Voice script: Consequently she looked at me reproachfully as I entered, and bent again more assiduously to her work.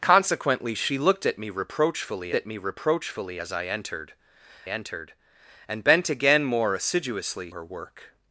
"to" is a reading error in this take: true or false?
true